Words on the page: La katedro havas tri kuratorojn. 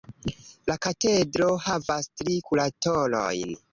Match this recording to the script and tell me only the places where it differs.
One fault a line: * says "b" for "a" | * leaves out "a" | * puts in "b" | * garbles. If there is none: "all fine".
all fine